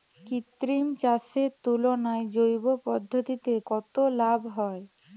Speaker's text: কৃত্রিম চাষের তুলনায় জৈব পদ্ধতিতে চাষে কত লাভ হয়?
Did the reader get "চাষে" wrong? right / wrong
wrong